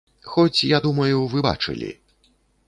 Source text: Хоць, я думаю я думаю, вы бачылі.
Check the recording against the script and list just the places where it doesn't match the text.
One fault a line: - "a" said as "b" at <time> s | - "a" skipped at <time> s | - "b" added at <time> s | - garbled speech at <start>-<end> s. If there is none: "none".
- "я думаю" skipped at 1.3 s